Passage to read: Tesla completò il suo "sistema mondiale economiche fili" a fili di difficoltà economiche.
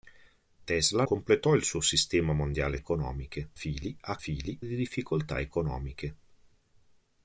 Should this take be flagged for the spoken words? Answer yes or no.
no